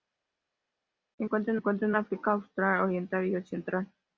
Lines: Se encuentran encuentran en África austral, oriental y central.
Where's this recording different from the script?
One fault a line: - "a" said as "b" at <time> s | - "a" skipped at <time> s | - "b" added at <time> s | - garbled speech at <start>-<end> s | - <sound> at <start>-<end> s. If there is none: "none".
none